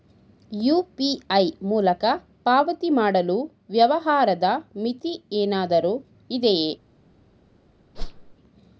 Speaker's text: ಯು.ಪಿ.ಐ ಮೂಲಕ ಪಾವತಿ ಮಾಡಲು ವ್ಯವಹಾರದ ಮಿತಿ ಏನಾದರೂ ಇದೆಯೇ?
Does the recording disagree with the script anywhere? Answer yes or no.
no